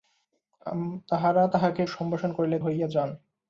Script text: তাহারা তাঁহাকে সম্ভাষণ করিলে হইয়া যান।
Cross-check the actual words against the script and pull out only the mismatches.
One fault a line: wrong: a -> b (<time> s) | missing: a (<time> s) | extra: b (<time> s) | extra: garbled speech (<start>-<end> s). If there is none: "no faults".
no faults